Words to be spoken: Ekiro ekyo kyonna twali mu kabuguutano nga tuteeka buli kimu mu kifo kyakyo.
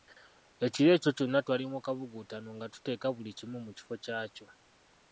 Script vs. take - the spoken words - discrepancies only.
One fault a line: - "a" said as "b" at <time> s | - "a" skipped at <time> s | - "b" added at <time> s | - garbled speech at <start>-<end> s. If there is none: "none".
none